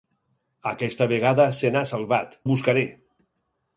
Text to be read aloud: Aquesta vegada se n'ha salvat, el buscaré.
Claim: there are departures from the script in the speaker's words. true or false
false